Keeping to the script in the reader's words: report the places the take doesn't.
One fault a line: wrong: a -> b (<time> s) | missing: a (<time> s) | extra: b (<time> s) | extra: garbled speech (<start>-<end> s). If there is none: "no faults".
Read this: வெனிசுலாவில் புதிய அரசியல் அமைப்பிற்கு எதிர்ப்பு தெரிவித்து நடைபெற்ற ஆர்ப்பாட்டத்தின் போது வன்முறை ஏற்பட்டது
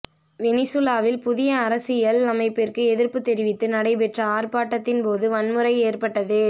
no faults